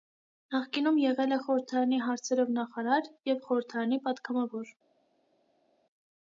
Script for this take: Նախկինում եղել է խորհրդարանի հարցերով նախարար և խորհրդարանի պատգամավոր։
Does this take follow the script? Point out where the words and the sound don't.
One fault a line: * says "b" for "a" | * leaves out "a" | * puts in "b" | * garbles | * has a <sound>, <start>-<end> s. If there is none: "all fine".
all fine